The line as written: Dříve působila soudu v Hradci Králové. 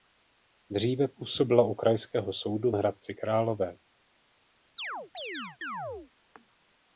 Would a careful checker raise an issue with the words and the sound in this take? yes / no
yes